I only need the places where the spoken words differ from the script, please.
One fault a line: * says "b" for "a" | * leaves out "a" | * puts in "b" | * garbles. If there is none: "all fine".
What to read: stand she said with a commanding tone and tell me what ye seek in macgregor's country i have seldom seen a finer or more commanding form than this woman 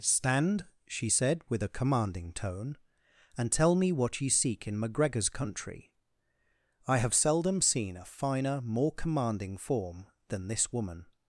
* leaves out "or"